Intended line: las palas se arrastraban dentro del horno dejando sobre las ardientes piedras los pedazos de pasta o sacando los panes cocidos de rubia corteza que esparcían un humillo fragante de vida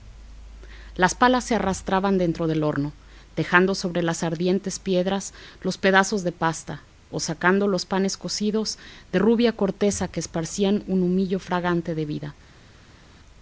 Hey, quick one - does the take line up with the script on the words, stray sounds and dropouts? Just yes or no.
yes